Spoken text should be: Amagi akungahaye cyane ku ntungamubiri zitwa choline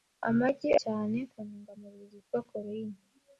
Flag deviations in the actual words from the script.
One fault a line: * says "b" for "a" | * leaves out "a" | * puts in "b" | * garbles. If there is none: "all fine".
* leaves out "akungahaye"